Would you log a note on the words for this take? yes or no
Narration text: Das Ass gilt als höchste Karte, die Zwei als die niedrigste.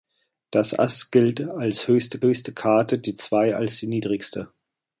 yes